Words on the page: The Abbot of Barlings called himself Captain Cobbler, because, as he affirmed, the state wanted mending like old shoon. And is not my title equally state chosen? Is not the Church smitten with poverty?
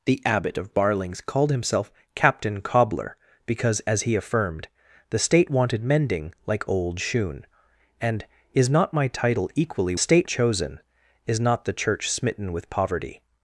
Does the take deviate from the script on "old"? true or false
false